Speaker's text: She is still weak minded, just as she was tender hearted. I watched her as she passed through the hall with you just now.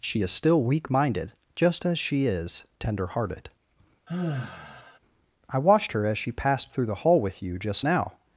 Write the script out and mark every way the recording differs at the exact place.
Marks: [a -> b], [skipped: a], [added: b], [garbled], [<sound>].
She is still weak minded, just as she [was -> is] tender hearted. [sigh] I watched her as she passed through the hall with you just now.